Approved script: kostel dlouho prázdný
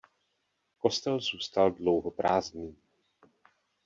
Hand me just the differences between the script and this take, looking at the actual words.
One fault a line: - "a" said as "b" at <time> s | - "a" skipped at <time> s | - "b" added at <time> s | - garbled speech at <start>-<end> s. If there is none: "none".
- "zůstal" added at 1.2 s